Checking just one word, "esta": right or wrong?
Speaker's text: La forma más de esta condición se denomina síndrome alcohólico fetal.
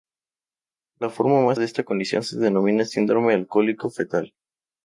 right